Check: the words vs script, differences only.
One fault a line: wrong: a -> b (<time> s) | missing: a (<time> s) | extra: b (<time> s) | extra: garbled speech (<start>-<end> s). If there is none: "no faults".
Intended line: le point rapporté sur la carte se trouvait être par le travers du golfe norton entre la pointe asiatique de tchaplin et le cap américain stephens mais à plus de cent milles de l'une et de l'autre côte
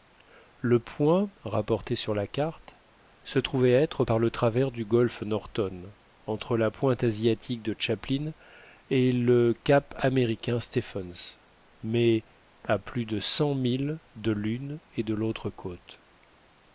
no faults